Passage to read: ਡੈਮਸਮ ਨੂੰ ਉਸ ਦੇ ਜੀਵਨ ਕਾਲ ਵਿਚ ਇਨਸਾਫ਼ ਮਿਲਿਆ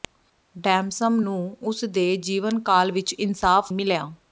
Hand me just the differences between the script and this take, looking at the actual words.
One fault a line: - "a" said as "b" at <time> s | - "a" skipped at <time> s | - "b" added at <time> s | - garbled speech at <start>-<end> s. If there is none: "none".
none